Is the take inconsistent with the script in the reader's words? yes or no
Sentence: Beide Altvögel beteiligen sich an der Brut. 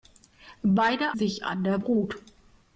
yes